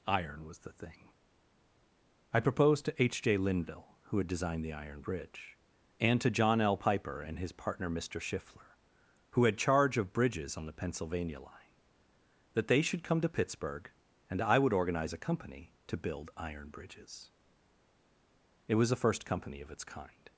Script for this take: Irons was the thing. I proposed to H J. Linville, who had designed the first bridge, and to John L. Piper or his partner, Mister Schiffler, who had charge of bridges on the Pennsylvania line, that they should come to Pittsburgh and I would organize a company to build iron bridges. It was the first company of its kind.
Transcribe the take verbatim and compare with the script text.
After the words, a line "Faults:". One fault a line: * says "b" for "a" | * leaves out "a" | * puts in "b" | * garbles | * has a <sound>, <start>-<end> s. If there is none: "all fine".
Iron was the thing. I proposed to H J. Linville, who had designed the iron bridge, and to John L. Piper and his partner, Mister Schiffler, who had charge of bridges on the Pennsylvania line, that they should come to Pittsburgh and I would organize a company to build iron bridges. It was the first company of its kind.
Faults:
* says "Iron" for "Irons"
* says "iron" for "first"
* says "and" for "or"